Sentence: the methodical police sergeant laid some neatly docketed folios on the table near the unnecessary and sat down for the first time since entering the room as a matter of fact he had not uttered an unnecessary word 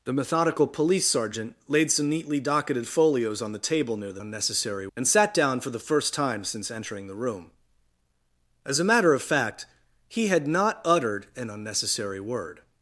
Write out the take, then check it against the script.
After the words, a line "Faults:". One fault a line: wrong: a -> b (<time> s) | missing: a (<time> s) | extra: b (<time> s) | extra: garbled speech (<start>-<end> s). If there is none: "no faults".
the methodical police sergeant laid some neatly docketed folios on the table near the unnecessary and sat down for the first time since entering the room as a matter of fact he had not uttered an unnecessary word
Faults:
no faults